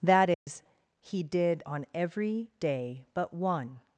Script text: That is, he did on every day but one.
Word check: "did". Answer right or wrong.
right